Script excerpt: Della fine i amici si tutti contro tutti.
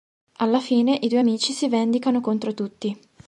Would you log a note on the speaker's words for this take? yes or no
yes